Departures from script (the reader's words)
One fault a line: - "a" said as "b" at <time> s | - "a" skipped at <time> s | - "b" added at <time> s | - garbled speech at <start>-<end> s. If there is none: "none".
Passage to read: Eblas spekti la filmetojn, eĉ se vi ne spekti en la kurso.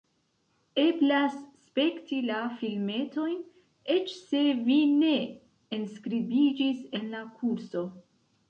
- "spekti" said as "enskribiĝis" at 5.8 s